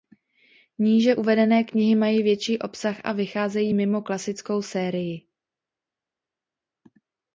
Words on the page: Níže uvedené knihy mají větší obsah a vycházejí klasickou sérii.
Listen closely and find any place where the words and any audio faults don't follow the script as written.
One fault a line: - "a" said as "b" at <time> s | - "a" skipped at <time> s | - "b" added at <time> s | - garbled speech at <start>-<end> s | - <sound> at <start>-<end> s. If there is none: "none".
- "mimo" added at 3.7 s